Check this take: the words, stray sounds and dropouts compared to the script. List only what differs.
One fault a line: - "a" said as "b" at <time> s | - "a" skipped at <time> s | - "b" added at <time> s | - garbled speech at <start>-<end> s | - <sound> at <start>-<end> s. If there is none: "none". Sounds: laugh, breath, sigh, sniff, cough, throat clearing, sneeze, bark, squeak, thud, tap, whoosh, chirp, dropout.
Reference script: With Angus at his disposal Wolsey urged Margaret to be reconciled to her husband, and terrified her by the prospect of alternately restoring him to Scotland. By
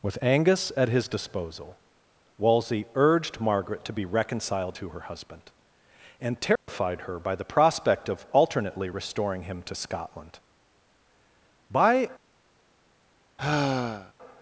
- dropout at 6.6-6.7 s
- sigh at 13.4-14.1 s